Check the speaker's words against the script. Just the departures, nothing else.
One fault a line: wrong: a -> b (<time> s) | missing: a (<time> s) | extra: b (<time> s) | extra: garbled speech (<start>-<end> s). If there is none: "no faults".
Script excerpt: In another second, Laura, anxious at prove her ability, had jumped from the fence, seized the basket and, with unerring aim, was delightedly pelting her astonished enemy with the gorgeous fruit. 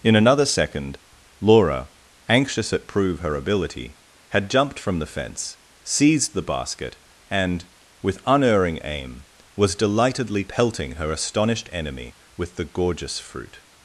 no faults